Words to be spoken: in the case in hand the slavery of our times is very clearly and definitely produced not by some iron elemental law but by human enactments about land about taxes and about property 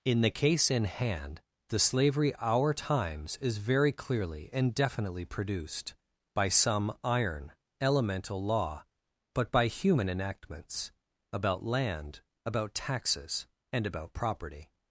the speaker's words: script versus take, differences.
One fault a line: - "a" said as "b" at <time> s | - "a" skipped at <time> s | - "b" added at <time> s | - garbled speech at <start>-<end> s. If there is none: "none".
- "of" skipped at 2.3 s
- "not" skipped at 5.9 s